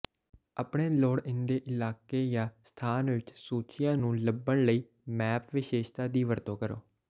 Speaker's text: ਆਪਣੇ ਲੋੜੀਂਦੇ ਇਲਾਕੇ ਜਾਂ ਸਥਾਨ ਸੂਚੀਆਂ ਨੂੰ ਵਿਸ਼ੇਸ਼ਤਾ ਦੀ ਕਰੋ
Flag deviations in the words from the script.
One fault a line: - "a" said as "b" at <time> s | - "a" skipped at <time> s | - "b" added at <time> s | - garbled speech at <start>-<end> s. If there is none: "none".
- "ਵਿੱਚ" added at 3.1 s
- "ਲੱਭਣ ਲਈ ਮੈਪ" added at 4.2 s
- "ਵਰਤੋਂ" added at 6.2 s